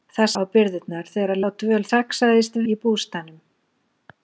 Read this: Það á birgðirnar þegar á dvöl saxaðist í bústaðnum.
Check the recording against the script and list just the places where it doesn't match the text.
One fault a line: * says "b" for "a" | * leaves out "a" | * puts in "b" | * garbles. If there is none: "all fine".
all fine